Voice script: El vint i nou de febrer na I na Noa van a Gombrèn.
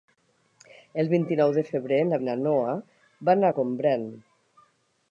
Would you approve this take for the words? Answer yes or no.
yes